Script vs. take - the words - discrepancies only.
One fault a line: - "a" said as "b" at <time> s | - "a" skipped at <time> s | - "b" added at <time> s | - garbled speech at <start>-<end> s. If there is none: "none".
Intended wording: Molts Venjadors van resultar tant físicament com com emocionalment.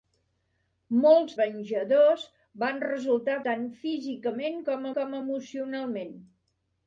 none